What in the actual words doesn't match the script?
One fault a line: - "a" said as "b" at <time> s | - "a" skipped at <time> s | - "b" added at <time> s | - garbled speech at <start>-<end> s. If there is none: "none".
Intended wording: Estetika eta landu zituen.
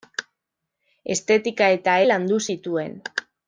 none